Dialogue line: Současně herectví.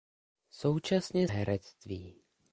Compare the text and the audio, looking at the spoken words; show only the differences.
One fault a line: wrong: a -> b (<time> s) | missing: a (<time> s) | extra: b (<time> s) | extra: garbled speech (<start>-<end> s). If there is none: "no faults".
no faults